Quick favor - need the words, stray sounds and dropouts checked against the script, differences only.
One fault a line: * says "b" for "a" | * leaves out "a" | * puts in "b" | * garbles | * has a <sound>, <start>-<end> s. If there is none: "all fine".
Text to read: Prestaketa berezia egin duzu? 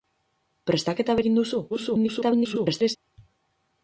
* leaves out "berezia"
* garbles